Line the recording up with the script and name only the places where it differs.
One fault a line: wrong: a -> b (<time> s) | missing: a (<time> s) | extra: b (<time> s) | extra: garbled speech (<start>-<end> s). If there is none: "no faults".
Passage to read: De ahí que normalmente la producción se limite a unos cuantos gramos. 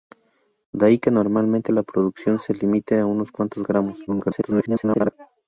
extra: garbled speech (4.1-5.1 s)